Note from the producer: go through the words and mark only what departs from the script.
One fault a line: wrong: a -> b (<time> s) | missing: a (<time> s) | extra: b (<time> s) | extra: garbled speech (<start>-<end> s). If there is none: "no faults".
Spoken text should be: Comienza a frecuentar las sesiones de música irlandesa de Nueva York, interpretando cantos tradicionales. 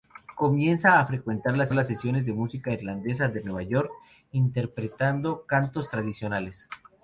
extra: las (1.7 s)